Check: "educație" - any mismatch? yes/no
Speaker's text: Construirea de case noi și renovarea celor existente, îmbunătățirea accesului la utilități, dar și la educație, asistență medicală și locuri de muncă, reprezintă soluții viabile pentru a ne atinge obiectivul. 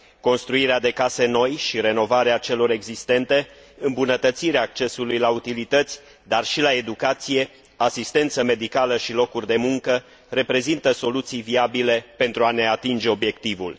no